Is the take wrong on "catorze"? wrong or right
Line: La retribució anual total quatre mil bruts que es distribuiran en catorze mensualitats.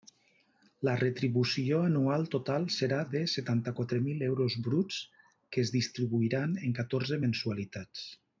right